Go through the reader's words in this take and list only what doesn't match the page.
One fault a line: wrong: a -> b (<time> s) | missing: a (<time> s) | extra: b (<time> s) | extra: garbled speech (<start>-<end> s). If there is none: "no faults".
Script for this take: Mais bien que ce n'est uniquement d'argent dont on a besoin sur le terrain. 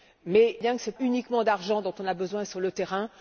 no faults